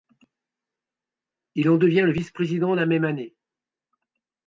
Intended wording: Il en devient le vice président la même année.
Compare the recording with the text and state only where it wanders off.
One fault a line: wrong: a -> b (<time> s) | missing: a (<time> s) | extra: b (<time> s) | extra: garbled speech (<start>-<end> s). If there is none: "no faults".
no faults